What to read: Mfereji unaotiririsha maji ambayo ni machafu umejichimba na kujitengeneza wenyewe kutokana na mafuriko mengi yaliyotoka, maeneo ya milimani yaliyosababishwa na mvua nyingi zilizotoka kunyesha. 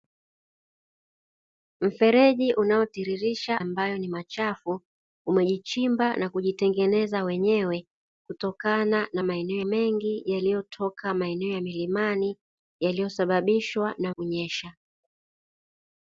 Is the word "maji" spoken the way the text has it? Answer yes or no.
no